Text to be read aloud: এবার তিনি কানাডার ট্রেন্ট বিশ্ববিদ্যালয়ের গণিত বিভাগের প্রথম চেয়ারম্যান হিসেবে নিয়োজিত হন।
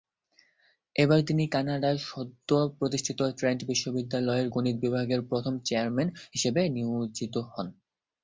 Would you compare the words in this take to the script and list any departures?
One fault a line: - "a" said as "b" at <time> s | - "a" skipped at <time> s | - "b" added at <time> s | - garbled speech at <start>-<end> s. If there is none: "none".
- "সদ্য প্রতিষ্ঠিত" added at 2.1 s